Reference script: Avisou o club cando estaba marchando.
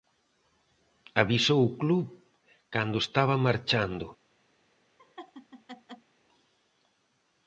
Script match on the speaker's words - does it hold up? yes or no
yes